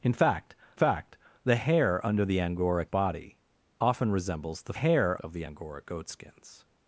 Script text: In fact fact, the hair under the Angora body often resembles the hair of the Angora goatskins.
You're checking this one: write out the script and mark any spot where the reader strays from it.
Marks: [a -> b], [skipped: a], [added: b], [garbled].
In fact fact, the hair under the Angora body often resembles the hair of the Angora goatskins.